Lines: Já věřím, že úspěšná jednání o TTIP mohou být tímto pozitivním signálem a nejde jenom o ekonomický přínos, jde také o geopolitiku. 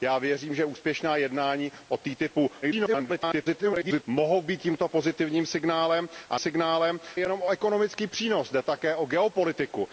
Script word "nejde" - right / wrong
wrong